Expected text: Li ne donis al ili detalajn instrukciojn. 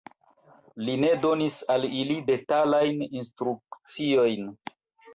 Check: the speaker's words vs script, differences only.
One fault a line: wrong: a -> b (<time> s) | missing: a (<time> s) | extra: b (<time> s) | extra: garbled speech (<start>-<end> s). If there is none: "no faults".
no faults